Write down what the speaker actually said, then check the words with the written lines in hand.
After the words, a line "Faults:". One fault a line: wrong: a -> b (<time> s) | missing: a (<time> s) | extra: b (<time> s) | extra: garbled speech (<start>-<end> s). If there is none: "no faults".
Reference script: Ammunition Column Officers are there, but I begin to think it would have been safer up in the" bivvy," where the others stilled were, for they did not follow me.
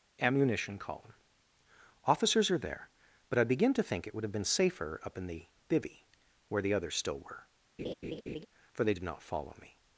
Ammunition Column Officers are there, but I begin to think it would have been safer up in the" bivvy," where the others still were, for they did not follow me.
Faults:
wrong: stilled -> still (7.0 s)